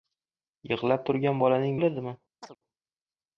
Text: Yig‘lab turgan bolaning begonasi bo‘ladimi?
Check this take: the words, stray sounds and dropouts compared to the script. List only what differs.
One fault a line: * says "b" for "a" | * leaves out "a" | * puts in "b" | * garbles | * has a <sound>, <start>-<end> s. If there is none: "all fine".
* leaves out "begonasi"
* has a chirp, 2.4-2.6 s